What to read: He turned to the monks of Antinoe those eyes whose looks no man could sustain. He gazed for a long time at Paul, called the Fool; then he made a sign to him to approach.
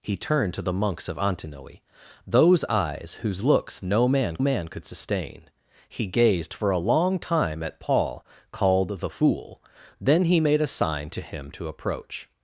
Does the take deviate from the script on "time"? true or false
false